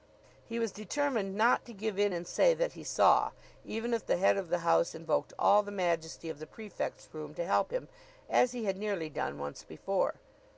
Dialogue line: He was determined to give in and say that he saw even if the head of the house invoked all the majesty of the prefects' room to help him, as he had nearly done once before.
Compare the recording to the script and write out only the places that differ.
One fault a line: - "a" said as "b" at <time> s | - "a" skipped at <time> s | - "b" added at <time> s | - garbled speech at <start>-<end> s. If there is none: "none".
- "not" added at 1.3 s